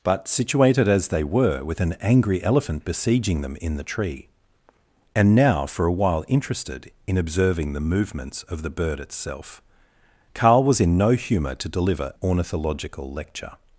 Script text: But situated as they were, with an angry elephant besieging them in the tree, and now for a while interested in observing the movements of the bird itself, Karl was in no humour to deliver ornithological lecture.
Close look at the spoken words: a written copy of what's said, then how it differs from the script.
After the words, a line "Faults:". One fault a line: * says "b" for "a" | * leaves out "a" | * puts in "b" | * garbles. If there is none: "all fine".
But situated as they were, with an angry elephant besieging them in the tree, and now for a while interested in observing the movements of the bird itself, Karl was in no humour to deliver ornithological lecture.
Faults:
all fine